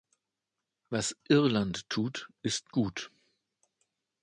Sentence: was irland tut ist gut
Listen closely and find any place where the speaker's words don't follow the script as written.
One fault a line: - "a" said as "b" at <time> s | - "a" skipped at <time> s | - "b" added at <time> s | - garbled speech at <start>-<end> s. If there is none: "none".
none